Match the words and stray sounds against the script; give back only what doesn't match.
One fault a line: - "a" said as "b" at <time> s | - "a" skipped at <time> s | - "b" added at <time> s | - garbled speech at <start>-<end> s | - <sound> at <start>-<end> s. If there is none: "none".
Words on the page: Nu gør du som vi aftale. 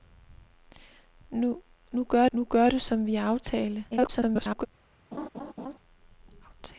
- "nu gør" added at 2.3 s
- garbled speech at 3.9-4.7 s
- laugh at 5.1-5.8 s